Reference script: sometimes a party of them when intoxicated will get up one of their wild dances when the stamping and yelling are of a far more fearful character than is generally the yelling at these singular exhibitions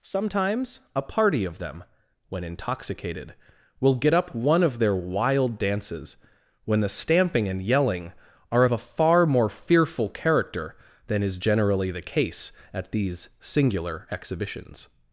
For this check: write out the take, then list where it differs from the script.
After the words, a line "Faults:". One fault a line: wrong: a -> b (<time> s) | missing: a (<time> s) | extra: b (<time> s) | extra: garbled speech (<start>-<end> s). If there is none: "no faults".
sometimes a party of them when intoxicated will get up one of their wild dances when the stamping and yelling are of a far more fearful character than is generally the case at these singular exhibitions
Faults:
wrong: yelling -> case (12.0 s)